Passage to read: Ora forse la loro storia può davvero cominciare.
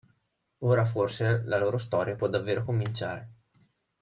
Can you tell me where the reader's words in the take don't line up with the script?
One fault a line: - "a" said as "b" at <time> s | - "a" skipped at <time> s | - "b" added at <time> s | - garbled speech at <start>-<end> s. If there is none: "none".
none